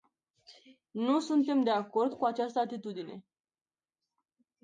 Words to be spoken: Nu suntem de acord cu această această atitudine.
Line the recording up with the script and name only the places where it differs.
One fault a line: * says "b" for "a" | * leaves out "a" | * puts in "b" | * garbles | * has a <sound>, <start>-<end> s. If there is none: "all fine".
* leaves out "această"